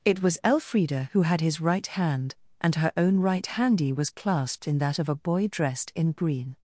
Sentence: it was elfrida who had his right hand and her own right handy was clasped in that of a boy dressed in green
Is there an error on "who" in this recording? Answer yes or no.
no